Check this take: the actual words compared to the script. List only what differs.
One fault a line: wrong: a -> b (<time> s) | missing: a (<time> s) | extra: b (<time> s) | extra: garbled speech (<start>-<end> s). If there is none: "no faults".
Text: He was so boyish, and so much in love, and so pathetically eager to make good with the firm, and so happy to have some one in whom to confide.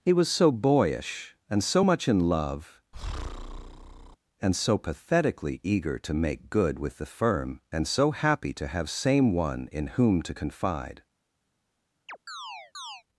wrong: some -> same (8.9 s)